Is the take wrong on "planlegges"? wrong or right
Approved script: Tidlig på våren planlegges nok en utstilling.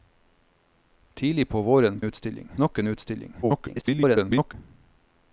wrong